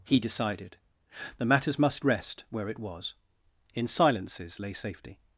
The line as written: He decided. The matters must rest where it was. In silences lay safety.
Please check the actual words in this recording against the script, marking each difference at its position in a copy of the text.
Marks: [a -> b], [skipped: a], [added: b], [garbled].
He decided. The matters must rest where it was. In silences lay safety.